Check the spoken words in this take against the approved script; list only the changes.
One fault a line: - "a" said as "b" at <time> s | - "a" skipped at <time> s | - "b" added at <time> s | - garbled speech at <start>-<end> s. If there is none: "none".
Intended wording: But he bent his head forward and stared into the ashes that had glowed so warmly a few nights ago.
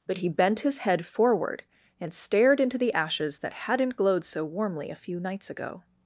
- "had" said as "hadn't" at 3.5 s